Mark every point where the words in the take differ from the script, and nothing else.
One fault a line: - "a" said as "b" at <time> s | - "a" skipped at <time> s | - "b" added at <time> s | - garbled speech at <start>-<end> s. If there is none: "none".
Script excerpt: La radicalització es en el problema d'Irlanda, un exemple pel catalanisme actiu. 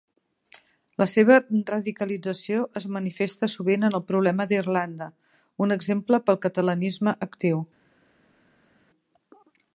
- "seva" added at 1.1 s
- "manifesta sovint" added at 3.0 s